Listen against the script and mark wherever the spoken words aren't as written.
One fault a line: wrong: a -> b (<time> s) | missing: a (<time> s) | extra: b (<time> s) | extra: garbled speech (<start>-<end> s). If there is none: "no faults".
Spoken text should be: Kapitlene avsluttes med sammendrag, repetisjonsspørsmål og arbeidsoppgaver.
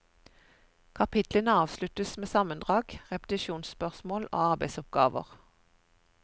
no faults